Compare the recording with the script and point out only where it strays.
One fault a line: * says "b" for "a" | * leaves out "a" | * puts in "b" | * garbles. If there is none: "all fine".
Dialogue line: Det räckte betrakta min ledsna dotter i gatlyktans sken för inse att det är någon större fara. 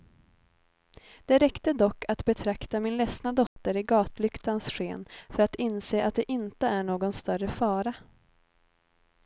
* puts in "dock att"
* puts in "att"
* puts in "inte"